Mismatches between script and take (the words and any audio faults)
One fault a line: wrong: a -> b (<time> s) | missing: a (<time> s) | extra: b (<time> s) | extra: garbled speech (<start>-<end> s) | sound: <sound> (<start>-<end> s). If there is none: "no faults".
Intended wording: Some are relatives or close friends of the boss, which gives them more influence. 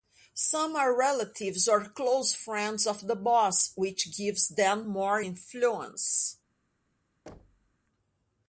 sound: thud (7.3-7.8 s)